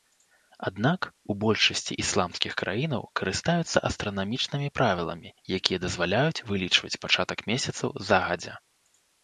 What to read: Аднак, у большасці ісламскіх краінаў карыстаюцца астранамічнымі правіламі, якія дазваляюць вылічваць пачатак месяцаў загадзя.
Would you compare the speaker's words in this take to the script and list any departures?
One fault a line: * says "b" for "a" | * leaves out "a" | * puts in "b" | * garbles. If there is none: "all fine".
all fine